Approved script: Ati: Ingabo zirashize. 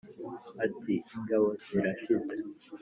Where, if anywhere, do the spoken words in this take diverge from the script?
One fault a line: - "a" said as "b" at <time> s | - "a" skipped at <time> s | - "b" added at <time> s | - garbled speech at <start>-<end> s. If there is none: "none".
none